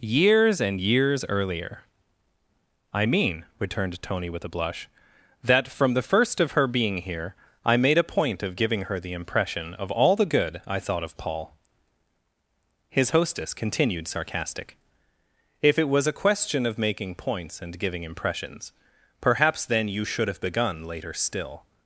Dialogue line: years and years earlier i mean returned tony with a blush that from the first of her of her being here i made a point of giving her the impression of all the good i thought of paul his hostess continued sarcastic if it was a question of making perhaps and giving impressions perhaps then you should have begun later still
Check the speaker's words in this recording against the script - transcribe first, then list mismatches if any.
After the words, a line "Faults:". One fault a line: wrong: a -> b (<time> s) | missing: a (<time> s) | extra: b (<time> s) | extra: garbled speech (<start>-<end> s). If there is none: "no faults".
years and years earlier i mean returned tony with a blush that from the first of her being here i made a point of giving her the impression of all the good i thought of paul his hostess continued sarcastic if it was a question of making points and giving impressions perhaps then you should have begun later still
Faults:
missing: of her (6.7 s)
wrong: perhaps -> points (17.1 s)